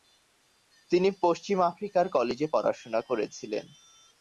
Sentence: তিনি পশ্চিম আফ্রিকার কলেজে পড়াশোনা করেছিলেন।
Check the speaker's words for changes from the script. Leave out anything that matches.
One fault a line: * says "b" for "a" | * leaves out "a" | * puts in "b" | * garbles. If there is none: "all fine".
all fine